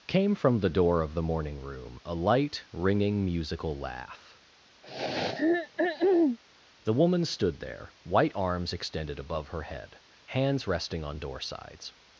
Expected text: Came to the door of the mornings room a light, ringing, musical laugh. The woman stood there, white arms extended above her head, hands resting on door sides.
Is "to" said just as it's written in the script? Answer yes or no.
no